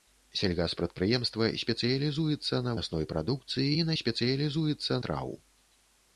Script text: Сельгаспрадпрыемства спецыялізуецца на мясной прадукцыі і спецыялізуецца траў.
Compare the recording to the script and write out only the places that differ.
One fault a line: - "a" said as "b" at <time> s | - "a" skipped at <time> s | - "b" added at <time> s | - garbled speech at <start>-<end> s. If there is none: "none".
none